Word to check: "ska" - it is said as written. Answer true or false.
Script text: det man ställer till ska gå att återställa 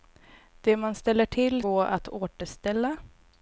false